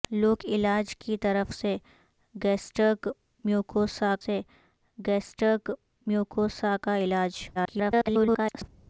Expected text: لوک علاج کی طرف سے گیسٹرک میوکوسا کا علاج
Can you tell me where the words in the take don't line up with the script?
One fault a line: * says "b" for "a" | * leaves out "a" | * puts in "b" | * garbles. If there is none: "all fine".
* puts in "سے گیسٹرک میوکوسا"
* garbles